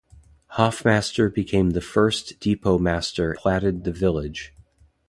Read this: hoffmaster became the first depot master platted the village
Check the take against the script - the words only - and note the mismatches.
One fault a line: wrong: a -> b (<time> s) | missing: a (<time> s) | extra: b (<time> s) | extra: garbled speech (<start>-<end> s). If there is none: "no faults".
no faults